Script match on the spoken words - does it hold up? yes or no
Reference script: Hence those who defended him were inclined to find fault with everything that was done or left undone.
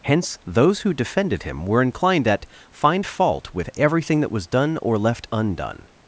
no